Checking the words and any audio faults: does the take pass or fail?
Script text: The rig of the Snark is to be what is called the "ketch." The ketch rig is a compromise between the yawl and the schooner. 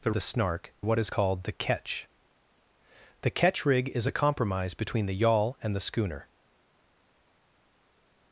fail